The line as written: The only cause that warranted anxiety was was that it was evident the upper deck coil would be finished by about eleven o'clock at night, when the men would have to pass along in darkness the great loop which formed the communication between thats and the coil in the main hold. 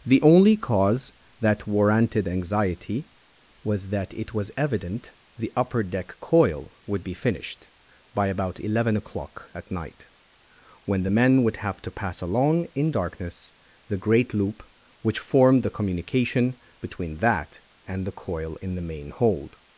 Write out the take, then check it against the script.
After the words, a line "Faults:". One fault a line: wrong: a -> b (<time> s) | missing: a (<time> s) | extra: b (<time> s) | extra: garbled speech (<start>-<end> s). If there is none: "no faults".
The only cause that warranted anxiety was that it was evident the upper deck coil would be finished by about eleven o'clock at night, when the men would have to pass along in darkness the great loop which formed the communication between that and the coil in the main hold.
Faults:
missing: was (3.9 s)
wrong: thats -> that (17.2 s)